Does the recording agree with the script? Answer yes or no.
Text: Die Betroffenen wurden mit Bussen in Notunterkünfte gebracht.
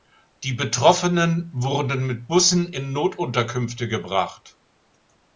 yes